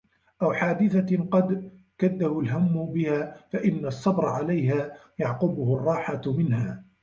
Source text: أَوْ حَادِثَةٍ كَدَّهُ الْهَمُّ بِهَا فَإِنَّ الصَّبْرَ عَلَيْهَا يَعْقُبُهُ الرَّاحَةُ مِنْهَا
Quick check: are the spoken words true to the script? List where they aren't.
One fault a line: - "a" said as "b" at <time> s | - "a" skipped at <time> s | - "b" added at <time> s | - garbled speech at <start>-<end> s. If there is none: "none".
- "قَدْ" added at 1.3 s